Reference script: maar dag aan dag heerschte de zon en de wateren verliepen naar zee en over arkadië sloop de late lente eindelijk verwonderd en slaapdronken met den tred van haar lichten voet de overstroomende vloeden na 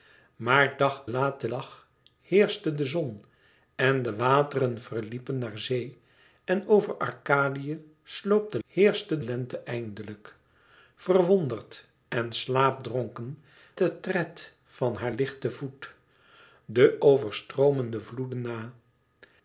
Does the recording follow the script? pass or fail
fail